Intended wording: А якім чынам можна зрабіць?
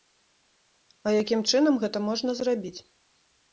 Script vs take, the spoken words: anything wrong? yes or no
yes